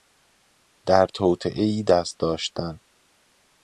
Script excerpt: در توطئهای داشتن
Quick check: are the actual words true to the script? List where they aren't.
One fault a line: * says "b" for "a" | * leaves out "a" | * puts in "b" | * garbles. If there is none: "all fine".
* puts in "دست"